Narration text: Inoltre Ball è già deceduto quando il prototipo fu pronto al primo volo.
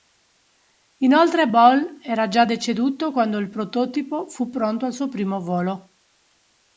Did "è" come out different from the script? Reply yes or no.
yes